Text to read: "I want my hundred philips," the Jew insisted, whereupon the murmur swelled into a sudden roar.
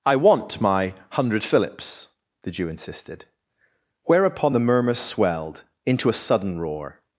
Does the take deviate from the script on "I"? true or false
false